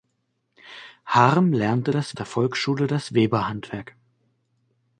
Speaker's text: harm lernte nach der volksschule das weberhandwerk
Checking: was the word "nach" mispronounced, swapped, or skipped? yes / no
yes